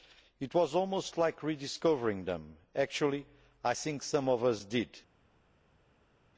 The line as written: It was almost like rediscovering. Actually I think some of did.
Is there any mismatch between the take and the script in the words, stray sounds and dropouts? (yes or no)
yes